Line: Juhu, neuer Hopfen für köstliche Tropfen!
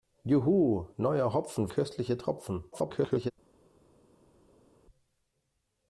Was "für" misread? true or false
true